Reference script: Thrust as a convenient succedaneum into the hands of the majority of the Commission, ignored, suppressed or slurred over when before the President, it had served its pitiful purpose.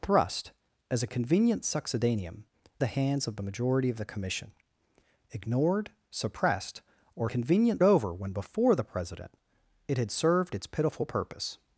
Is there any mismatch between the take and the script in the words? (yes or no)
yes